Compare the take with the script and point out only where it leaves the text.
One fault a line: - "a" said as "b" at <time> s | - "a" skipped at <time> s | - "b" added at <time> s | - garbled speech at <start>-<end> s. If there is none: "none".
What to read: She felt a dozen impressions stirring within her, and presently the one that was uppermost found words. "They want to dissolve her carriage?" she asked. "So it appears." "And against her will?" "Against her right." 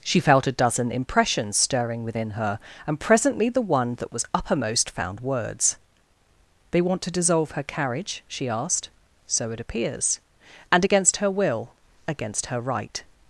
none